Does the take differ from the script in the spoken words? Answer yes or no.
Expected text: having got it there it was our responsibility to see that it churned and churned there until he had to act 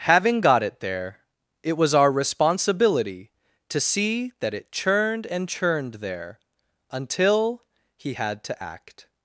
no